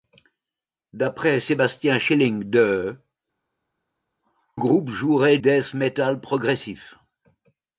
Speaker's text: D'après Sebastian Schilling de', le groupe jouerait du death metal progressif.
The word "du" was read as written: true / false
false